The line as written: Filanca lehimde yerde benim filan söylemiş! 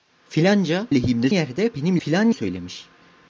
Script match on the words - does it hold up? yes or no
yes